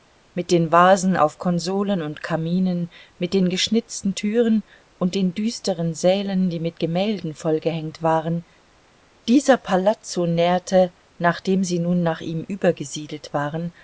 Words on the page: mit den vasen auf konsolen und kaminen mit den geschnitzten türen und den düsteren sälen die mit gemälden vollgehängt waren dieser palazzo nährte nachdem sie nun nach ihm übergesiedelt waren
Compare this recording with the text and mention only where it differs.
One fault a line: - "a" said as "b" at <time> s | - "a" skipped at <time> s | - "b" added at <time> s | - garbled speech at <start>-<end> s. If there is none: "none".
none